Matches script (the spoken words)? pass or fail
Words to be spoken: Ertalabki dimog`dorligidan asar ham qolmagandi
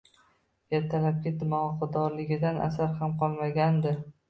pass